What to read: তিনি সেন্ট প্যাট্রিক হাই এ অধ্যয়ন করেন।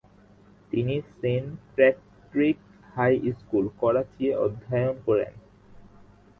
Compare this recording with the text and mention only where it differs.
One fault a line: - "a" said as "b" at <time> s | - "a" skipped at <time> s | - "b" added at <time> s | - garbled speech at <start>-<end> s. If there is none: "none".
- "স্কুল করাচি" added at 3.4 s